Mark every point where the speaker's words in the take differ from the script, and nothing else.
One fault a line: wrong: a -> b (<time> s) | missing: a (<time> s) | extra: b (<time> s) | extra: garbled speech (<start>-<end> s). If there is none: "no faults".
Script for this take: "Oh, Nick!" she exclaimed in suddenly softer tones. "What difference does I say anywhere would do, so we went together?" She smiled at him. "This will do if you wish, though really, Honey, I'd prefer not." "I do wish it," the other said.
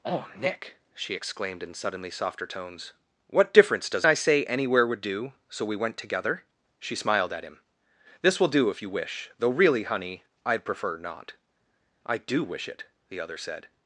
no faults